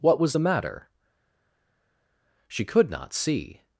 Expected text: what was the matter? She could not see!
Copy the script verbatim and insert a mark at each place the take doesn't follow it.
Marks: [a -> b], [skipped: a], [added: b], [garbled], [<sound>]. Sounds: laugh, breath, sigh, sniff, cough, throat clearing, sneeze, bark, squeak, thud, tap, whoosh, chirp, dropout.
what was the matter? She could not see!